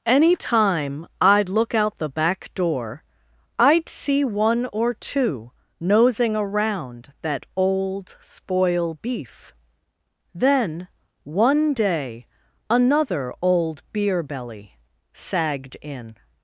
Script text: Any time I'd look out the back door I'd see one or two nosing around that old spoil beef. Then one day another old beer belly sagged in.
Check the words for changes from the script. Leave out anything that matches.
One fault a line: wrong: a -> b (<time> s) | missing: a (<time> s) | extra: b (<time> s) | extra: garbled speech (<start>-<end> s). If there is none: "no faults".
no faults